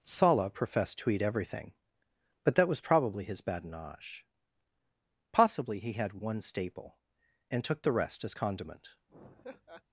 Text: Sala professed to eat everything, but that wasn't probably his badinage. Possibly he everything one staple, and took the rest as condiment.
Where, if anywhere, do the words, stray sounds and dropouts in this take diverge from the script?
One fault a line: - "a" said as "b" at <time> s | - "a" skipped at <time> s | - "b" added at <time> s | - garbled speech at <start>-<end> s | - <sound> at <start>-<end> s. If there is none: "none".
- "wasn't" said as "was" at 2.7 s
- "everything" said as "had" at 5.9 s
- laugh at 9.1-9.8 s